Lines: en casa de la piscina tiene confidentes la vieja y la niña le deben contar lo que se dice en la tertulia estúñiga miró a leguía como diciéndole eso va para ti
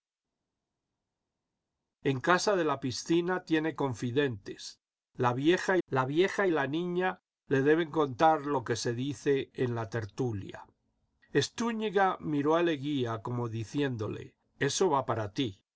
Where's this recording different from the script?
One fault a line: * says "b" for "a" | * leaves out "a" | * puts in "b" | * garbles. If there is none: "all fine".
* puts in "la vieja"